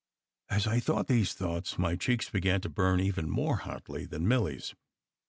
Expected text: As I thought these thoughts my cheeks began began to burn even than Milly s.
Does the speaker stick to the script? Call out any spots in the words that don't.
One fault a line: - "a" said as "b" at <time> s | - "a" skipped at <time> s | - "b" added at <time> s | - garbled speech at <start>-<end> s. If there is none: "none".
- "began" skipped at 2.6 s
- "more hotly" added at 3.3 s